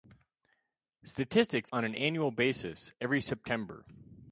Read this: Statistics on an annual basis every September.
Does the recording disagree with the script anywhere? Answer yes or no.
no